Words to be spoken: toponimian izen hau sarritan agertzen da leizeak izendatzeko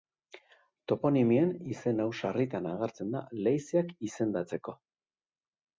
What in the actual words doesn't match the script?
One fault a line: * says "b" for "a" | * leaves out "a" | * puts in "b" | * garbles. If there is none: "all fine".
all fine